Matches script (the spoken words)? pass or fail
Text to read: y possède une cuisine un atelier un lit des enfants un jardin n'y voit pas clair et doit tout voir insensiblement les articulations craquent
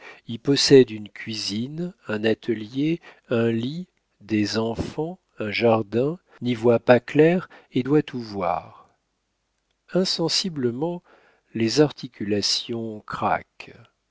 pass